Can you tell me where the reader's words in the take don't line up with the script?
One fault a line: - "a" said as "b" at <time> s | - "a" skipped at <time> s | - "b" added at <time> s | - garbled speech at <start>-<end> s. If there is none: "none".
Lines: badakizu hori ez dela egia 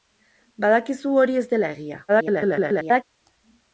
- garbled speech at 2.1-3.0 s